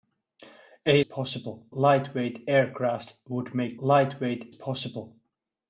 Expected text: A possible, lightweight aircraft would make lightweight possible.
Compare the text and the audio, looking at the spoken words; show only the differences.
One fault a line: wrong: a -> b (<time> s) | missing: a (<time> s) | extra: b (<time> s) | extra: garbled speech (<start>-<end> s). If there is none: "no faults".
no faults